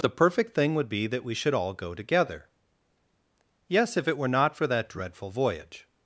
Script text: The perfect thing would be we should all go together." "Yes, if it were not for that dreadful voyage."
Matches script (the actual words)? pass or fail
fail